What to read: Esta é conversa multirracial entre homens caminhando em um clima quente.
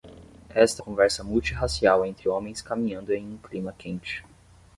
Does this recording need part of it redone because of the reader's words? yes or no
no